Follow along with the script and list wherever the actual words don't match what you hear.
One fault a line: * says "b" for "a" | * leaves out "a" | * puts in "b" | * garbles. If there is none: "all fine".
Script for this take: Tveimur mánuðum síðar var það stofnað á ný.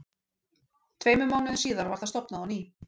all fine